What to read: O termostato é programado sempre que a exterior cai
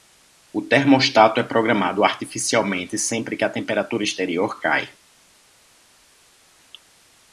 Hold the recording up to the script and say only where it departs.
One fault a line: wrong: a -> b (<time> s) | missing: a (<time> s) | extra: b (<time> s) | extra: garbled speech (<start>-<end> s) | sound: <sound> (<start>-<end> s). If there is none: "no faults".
extra: artificialmente (2.0 s)
extra: temperatura (3.5 s)